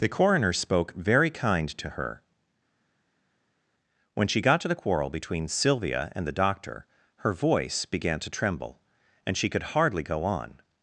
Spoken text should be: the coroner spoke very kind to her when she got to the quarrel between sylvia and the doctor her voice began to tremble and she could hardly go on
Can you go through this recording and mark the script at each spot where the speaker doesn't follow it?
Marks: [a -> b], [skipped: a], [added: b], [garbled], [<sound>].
the coroner spoke very kind to her when she got to the quarrel between sylvia and the doctor her voice began to tremble and she could hardly go on